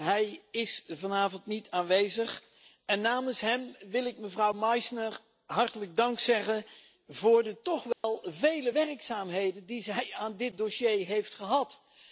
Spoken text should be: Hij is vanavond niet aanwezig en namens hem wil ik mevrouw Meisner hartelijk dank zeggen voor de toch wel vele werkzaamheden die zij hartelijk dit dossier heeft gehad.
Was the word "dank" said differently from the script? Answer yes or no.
no